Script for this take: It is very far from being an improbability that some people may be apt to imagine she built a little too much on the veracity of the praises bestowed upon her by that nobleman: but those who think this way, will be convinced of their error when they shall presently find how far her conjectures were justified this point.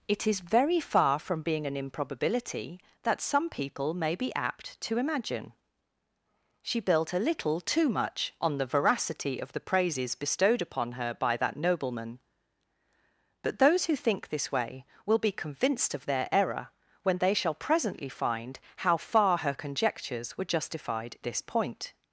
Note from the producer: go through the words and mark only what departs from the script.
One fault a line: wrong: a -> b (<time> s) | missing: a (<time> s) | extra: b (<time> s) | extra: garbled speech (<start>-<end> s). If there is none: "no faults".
no faults